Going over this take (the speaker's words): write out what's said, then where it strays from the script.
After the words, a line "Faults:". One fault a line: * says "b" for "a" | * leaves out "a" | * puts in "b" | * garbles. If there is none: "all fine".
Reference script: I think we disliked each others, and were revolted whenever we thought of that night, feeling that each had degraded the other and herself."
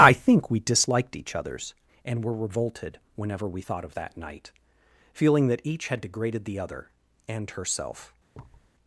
I think we disliked each others, and were revolted whenever we thought of that night, feeling that each had degraded the other and herself."
Faults:
all fine